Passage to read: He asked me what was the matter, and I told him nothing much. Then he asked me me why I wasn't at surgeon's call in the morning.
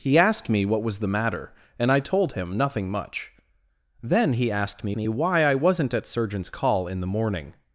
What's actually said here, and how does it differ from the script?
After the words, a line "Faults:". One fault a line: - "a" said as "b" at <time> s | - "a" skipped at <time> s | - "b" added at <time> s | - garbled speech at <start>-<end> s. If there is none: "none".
He asked me what was the matter, and I told him nothing much. Then he asked me me why I wasn't at surgeon's call in the morning.
Faults:
none